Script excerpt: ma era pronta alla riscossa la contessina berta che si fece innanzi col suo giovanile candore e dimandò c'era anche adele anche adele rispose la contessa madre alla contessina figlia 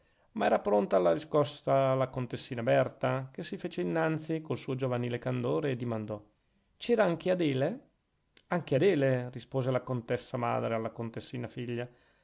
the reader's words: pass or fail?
pass